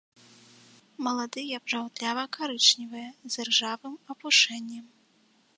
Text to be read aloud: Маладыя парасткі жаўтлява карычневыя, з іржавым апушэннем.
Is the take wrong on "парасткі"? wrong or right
wrong